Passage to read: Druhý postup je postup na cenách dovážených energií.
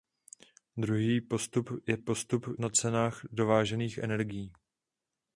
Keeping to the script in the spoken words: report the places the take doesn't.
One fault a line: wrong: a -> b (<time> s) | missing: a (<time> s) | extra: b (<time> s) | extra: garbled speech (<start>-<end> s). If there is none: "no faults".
no faults